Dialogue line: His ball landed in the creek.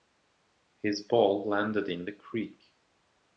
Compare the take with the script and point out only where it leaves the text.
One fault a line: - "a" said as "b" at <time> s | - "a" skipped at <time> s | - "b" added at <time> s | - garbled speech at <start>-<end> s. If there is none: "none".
none